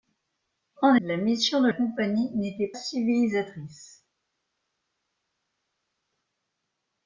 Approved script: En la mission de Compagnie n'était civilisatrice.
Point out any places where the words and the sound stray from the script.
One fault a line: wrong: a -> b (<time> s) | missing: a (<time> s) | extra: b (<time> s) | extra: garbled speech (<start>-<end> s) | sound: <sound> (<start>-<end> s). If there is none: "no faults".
no faults